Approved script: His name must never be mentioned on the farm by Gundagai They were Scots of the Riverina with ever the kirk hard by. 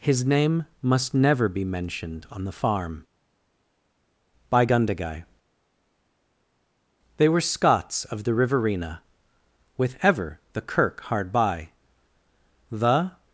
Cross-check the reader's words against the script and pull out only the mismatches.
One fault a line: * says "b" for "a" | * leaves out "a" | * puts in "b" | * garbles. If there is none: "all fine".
* puts in "The"